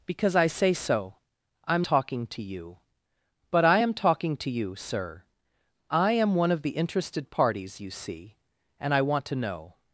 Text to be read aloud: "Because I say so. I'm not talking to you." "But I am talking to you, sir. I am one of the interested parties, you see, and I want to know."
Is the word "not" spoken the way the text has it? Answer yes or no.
no